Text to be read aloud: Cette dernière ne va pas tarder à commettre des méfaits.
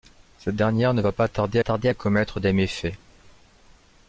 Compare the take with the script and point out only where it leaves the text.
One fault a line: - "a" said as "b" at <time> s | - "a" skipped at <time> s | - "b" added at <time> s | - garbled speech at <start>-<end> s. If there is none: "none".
- "tarder" added at 1.6 s